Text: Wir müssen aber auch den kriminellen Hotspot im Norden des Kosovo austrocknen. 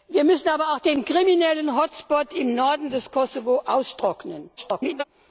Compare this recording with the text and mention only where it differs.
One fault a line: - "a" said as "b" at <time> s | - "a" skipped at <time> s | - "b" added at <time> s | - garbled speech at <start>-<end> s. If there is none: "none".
- garbled speech at 4.6-5.0 s